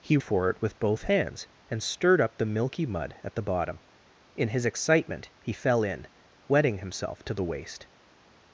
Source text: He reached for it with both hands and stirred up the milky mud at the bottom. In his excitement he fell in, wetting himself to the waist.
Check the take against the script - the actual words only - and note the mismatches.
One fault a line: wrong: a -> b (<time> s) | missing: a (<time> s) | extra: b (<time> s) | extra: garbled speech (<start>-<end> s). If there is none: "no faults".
missing: reached (0.2 s)